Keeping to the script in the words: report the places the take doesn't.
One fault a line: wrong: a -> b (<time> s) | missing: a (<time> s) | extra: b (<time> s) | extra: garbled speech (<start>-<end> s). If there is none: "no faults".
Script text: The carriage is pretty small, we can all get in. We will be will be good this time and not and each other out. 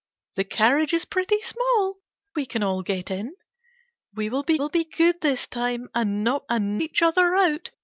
no faults